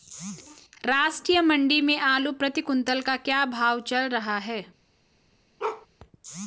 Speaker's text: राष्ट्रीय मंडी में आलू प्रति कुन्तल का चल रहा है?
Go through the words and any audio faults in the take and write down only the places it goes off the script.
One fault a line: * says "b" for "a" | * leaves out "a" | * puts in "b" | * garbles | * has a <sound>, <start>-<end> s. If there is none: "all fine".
* puts in "क्या भाव"
* has a bark, 5.6-5.9 s